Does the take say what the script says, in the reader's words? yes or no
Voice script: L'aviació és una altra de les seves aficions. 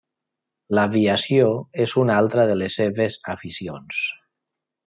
yes